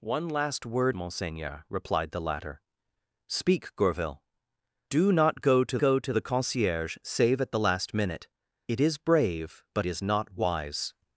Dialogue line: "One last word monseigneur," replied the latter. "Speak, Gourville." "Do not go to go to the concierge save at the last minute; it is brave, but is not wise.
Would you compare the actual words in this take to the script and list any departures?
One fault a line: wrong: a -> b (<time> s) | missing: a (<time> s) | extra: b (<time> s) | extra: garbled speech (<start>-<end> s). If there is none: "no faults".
no faults